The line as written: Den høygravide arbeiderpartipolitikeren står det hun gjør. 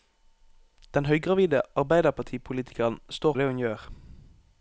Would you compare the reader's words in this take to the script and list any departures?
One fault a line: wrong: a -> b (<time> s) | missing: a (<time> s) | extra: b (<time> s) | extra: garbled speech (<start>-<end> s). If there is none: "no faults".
no faults